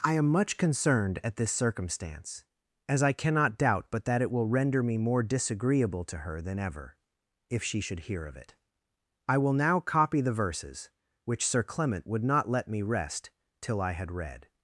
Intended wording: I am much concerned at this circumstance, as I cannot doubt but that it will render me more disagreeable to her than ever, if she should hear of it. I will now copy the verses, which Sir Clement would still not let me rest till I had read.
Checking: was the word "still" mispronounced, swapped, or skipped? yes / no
yes